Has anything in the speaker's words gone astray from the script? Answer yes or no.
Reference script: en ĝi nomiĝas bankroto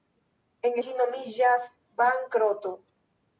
no